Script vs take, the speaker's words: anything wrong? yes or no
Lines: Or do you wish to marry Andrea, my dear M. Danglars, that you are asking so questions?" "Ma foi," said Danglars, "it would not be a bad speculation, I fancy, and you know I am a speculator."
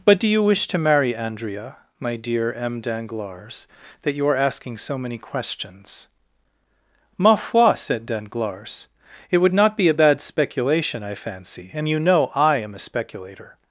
yes